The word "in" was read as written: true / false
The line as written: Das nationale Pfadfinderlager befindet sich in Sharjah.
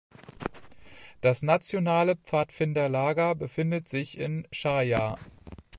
true